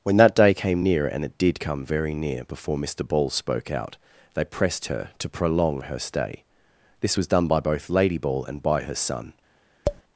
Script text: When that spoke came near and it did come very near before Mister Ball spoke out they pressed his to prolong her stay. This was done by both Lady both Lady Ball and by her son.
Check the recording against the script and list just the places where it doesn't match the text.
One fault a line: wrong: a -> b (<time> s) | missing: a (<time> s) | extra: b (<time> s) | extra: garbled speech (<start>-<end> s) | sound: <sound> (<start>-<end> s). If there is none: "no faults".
wrong: spoke -> day (0.3 s)
wrong: his -> her (4.9 s)
missing: both Lady (8.2 s)
sound: tap (9.9-10.0 s)